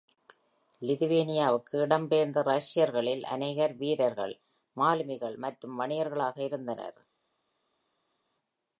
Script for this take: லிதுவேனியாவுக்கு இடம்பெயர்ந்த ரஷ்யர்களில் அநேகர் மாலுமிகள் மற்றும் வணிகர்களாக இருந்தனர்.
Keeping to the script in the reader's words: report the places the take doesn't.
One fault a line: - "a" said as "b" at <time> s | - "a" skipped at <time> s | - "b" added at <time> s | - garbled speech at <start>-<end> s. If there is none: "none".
- "வீரர்கள்" added at 3.8 s